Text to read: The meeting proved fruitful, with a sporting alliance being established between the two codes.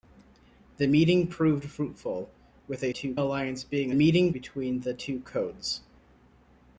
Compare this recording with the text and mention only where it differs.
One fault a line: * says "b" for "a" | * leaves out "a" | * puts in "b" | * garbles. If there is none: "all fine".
* says "two" for "sporting"
* says "meeting" for "established"